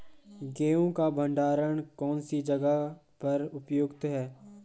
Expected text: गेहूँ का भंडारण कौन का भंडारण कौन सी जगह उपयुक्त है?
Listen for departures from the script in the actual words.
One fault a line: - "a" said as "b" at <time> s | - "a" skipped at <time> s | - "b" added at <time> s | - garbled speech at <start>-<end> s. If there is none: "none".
- "का भंडारण कौन" skipped at 2.2 s
- "पर" added at 3.2 s